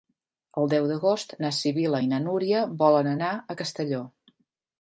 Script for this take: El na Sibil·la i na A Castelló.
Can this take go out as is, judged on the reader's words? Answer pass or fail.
fail